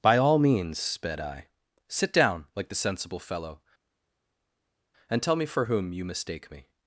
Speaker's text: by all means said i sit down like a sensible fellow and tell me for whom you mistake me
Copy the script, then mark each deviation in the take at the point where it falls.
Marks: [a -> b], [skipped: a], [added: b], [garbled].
by all means [said -> sped] i sit down like [a -> the] sensible fellow and tell me for whom you mistake me